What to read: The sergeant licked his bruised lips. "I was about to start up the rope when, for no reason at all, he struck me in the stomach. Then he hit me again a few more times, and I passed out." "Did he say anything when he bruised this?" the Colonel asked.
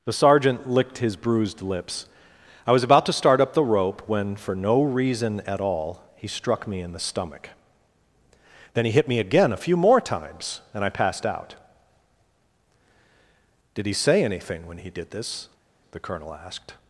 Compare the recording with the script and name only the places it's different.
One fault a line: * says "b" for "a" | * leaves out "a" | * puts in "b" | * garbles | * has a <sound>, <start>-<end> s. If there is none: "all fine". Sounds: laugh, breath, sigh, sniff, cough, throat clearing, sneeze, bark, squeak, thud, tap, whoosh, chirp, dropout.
* says "did" for "bruised"